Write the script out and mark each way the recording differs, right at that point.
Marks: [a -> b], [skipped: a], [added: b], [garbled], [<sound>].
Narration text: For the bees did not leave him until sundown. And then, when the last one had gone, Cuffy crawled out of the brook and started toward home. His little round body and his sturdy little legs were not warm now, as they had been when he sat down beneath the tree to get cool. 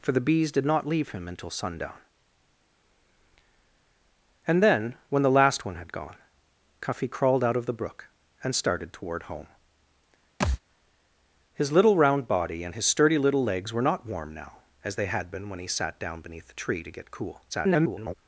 For the bees did not leave him until sundown. And then, when the last one had gone, Cuffy crawled out of the brook and started toward home. [thud] His little round body and his sturdy little legs were not warm now, as they had been when he sat down beneath the tree to get cool. [garbled]